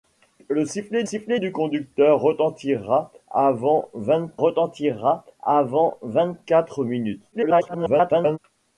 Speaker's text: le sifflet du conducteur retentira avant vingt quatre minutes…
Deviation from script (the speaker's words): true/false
true